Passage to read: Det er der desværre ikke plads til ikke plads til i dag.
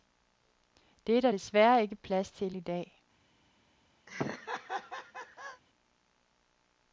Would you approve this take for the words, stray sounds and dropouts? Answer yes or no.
no